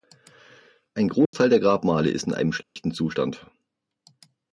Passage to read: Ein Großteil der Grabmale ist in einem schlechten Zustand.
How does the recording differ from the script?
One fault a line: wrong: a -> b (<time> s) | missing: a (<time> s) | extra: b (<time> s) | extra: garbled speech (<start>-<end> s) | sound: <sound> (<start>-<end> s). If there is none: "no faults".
sound: dropout (1.3-1.3 s)
sound: dropout (2.6-2.8 s)